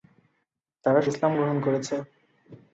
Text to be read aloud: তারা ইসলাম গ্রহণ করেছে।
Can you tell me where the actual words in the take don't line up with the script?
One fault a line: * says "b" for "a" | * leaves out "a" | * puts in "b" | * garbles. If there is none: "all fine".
all fine